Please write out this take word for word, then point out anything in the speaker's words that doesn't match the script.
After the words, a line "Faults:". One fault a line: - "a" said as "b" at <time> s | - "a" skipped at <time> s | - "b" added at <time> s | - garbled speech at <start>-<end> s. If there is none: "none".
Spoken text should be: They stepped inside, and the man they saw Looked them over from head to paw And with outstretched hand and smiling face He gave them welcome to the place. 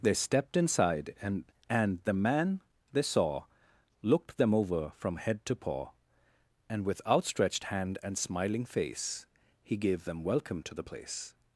They stepped inside, and and the man they saw Looked them over from head to paw And with outstretched hand and smiling face He gave them welcome to the place.
Faults:
- "and" added at 1.7 s